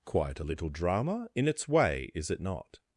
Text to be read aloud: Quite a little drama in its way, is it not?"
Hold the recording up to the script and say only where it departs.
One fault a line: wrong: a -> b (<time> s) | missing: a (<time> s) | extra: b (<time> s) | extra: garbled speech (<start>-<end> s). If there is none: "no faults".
no faults